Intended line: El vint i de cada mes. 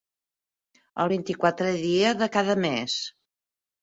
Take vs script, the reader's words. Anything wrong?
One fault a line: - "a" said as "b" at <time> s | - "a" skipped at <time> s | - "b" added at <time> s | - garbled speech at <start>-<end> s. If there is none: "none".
- "quatrè dia" added at 1.4 s